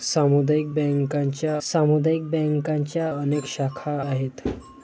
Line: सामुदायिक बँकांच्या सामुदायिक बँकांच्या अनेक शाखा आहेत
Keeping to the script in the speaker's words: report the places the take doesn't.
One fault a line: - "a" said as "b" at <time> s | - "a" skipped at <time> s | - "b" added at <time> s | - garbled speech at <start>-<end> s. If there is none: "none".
none